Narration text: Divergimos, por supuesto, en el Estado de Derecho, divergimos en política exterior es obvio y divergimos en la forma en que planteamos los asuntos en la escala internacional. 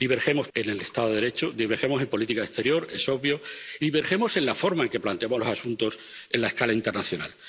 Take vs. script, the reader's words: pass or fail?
fail